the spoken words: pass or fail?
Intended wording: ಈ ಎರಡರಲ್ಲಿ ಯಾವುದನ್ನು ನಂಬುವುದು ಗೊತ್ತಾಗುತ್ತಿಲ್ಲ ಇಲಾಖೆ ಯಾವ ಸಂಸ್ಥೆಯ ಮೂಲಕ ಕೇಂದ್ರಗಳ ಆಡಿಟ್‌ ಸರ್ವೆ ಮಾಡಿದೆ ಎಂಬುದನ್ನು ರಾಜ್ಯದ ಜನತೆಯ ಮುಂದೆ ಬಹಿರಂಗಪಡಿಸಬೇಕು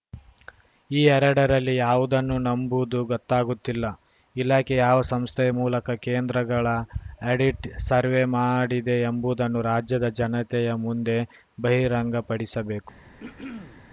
pass